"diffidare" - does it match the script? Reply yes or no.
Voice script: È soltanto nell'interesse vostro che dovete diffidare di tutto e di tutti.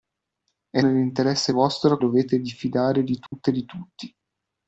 yes